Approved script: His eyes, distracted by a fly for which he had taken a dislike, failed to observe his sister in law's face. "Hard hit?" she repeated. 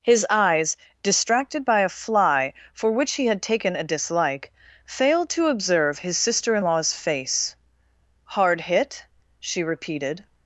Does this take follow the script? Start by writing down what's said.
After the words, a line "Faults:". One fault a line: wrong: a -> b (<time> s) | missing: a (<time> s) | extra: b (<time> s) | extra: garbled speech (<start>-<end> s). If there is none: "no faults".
His eyes, distracted by a fly for which he had taken a dislike, failed to observe his sister in law's face. "Hard hit?" she repeated.
Faults:
no faults